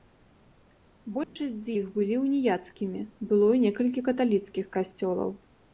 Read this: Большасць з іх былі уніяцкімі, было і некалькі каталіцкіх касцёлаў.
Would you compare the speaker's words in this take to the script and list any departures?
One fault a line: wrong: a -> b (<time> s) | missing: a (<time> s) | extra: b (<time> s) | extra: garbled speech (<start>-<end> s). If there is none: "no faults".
no faults